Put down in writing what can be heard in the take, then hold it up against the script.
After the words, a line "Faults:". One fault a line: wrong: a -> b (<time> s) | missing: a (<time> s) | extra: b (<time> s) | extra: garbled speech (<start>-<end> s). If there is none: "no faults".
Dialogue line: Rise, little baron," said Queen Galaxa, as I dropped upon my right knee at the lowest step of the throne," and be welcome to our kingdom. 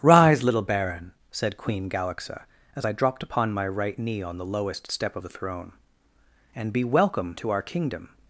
Rise, little baron," said Queen Galaxa, as I dropped upon my right knee on the lowest step of the throne," and be welcome to our kingdom.
Faults:
wrong: at -> on (4.2 s)